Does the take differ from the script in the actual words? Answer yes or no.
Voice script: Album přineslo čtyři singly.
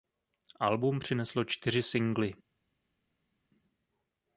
no